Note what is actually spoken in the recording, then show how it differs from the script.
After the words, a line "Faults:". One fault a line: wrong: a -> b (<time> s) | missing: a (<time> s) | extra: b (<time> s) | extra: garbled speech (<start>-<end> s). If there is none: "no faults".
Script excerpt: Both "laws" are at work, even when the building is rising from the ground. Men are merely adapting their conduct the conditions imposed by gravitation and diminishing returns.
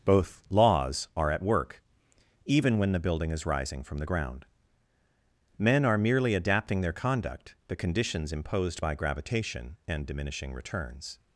Both "laws" are at work, even when the building is rising from the ground. Men are merely adapting their conduct the conditions imposed by gravitation and diminishing returns.
Faults:
no faults